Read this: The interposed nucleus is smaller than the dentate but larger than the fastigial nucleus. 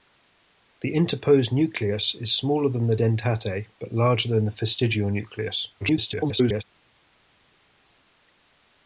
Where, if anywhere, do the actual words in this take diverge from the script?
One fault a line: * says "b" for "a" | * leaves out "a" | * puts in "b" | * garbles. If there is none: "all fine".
* garbles